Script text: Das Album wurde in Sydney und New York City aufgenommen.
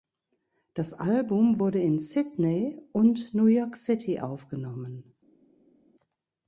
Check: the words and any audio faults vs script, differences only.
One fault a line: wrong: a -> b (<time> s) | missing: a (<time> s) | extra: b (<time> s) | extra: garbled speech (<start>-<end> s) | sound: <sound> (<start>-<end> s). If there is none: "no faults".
no faults